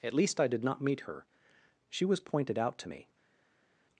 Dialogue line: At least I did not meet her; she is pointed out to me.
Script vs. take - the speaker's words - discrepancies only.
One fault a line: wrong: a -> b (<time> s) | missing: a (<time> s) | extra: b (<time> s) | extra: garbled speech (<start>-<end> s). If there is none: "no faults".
wrong: is -> was (2.0 s)